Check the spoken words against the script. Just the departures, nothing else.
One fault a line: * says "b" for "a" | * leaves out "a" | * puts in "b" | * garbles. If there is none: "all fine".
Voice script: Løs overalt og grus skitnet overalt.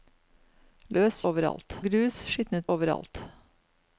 all fine